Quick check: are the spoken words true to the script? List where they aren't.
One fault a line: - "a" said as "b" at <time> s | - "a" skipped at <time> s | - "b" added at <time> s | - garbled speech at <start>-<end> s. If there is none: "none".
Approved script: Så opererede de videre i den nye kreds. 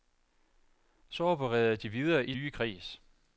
- "den" skipped at 2.3 s